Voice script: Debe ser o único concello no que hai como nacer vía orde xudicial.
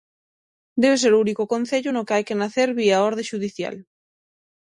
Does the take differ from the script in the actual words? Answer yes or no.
yes